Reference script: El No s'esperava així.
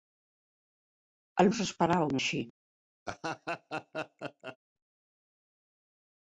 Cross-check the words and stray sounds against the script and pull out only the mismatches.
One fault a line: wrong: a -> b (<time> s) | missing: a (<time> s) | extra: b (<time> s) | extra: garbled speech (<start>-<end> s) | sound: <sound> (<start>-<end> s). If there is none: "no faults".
sound: laugh (3.1-4.6 s)